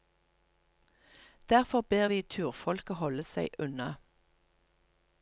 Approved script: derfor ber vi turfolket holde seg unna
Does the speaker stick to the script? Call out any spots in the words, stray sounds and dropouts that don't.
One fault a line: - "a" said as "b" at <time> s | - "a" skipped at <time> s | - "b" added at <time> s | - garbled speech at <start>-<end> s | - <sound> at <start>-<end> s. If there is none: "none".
none